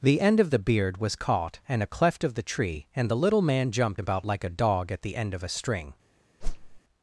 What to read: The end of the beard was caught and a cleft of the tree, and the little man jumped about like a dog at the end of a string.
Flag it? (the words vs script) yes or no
no